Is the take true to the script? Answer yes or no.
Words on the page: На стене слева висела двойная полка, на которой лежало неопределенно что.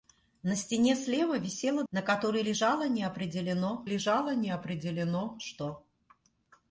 no